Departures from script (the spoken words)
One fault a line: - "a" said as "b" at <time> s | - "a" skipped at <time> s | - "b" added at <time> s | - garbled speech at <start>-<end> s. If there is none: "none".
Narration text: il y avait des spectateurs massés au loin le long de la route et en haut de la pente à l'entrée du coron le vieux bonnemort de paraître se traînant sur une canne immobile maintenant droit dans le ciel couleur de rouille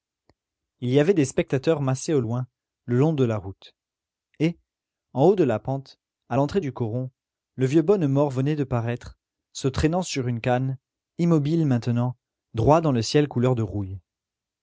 - "venait" added at 8.3 s